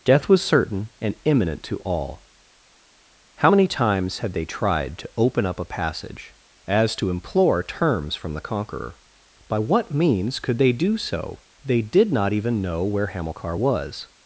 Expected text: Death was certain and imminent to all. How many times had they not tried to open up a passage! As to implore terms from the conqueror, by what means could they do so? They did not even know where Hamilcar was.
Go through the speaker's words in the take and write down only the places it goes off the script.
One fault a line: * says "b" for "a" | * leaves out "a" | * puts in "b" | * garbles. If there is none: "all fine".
* leaves out "not"